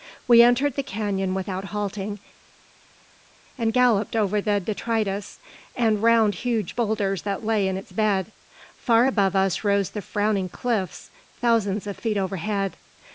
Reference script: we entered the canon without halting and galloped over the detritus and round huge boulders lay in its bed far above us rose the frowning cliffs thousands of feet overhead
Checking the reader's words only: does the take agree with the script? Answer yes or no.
no